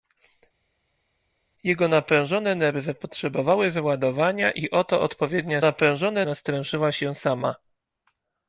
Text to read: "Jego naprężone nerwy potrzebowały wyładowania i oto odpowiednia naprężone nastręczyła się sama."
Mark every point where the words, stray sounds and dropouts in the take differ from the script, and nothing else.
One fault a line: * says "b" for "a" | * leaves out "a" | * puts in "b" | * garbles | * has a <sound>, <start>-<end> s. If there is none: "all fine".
all fine